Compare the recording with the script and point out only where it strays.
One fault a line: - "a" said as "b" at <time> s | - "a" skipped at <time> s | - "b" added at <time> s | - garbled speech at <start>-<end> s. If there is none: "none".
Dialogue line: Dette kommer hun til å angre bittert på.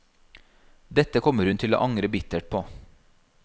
none